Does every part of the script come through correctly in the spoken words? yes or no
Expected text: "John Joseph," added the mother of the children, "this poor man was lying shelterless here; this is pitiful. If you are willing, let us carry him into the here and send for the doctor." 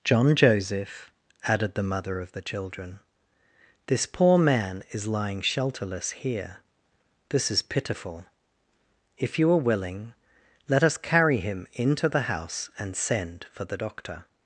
no